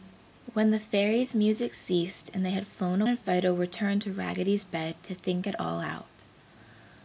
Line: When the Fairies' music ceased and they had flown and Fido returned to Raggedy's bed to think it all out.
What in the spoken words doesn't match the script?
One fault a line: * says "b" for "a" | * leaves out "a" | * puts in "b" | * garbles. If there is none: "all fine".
all fine